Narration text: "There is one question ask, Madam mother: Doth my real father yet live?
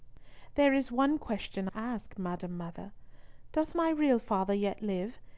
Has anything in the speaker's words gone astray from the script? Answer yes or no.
no